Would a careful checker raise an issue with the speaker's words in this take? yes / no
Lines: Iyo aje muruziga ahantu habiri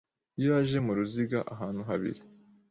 no